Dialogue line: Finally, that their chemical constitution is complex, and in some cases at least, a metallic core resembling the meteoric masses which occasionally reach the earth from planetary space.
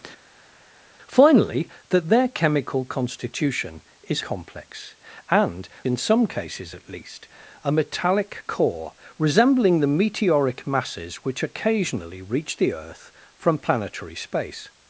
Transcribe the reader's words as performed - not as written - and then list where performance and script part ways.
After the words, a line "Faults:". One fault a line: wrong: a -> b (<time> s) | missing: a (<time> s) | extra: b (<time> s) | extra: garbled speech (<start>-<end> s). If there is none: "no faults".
Finally, that their chemical constitution is complex, and in some cases at least, a metallic core resembling the meteoric masses which occasionally reach the earth from planetary space.
Faults:
no faults